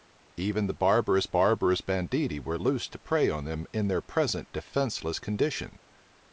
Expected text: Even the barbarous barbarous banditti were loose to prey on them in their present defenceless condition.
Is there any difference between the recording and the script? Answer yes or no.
no